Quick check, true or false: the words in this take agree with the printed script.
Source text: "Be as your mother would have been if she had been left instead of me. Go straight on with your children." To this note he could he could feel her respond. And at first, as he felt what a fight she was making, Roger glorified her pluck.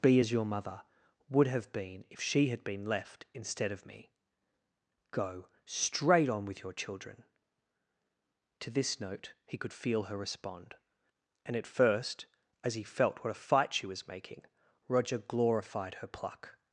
false